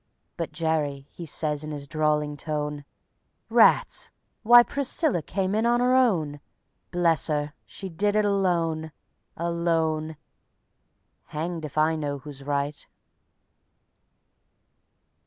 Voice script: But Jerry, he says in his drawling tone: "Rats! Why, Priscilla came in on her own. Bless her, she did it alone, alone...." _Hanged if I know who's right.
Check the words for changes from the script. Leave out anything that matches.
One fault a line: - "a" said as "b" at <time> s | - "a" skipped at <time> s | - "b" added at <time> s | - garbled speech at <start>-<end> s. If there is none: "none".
none